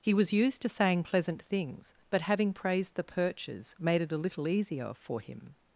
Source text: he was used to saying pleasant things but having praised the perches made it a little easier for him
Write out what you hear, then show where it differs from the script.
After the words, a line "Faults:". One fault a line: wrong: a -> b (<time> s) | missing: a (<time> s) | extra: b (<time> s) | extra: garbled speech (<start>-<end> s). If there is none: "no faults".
he was used to saying pleasant things but having praised the perches made it a little easier for him
Faults:
no faults